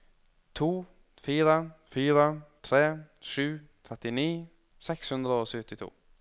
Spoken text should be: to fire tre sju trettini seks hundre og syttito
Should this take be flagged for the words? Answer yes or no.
yes